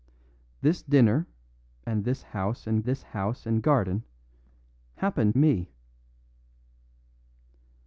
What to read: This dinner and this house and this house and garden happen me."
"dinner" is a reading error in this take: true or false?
false